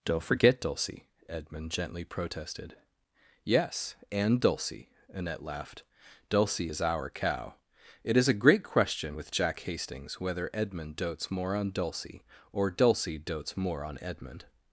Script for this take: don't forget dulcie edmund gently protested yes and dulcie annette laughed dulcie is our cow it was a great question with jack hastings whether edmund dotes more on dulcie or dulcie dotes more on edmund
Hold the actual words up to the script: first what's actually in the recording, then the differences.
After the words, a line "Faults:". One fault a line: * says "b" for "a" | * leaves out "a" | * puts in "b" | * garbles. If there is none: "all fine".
don't forget dulcie edmund gently protested yes and dulcie annette laughed dulcie is our cow it is a great question with jack hastings whether edmund dotes more on dulcie or dulcie dotes more on edmund
Faults:
* says "is" for "was"